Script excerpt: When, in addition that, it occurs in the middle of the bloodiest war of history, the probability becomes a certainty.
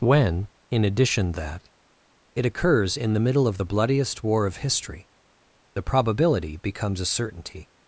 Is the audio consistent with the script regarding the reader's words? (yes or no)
yes